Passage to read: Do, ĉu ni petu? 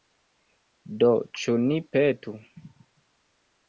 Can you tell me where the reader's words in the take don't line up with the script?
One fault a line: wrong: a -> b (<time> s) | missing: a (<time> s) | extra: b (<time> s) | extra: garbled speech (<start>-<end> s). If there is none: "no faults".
no faults